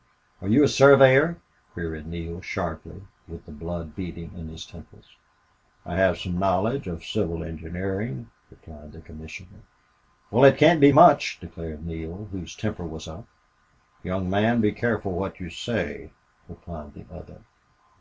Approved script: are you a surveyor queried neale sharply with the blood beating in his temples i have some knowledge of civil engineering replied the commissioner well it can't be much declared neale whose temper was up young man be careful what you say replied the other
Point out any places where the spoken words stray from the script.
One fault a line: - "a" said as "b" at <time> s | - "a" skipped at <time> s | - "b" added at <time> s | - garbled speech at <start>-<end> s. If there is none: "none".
none